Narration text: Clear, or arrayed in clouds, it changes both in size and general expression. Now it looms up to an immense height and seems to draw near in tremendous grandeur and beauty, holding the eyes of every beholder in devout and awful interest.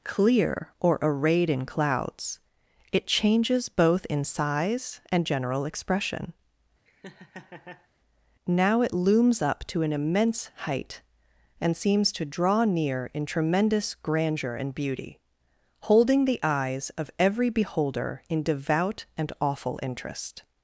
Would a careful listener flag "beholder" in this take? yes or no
no